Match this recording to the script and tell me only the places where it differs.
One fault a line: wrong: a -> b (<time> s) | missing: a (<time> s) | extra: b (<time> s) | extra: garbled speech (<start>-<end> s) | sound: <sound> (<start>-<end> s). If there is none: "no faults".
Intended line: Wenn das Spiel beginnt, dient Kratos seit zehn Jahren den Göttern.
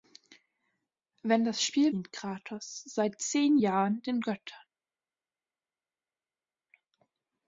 missing: beginnt (1.9 s)